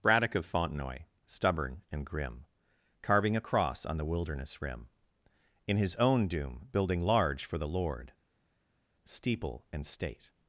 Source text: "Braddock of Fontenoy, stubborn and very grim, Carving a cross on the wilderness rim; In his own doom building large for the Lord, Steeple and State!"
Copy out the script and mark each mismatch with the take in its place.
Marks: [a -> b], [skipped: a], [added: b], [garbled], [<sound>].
"Braddock of Fontenoy, stubborn and [skipped: very] grim, Carving a cross on the wilderness rim; In his own doom building large for the Lord, Steeple and State!"